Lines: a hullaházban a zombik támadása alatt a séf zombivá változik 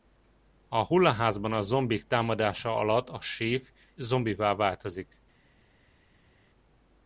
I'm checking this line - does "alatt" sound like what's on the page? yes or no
yes